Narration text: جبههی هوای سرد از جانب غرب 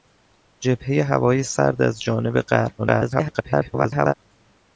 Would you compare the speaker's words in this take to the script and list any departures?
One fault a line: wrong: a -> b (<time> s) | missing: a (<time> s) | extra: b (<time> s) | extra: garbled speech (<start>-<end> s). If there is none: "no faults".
extra: garbled speech (2.8-4.1 s)